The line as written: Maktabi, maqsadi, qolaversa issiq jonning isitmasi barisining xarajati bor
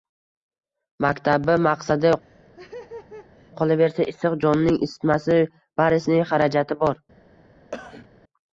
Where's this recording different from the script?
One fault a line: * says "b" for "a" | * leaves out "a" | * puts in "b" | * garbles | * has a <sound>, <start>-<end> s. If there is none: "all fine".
* has a laugh, 2.2-3.5 s
* has a cough, 7.7-8.1 s